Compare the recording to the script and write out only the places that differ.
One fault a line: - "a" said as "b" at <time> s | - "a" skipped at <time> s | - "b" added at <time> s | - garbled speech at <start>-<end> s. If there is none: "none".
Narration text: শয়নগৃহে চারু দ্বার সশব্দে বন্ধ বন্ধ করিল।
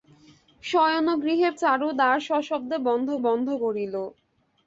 none